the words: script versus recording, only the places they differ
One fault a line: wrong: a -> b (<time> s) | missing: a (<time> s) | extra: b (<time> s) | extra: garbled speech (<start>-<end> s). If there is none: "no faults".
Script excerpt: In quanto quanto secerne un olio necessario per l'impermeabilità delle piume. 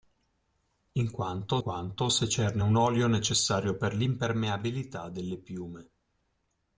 no faults